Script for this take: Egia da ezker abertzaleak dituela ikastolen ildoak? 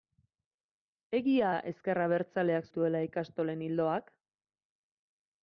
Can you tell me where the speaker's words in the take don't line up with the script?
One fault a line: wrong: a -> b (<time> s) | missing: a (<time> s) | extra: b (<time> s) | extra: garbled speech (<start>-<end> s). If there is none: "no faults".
no faults